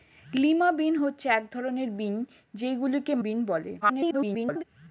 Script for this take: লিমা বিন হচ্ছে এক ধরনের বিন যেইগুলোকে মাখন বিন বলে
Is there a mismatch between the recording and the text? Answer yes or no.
yes